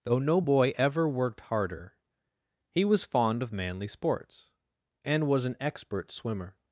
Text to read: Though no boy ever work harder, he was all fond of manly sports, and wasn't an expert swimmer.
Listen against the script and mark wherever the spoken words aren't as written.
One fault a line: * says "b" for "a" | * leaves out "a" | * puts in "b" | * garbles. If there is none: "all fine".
* says "worked" for "work"
* leaves out "all"
* says "was" for "wasn't"